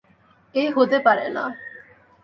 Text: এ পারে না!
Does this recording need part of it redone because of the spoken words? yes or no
yes